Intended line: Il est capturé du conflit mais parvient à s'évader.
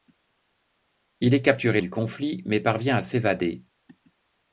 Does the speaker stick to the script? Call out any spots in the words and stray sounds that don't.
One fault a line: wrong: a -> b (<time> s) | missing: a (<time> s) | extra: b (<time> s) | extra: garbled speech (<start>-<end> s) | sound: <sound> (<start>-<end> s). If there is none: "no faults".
no faults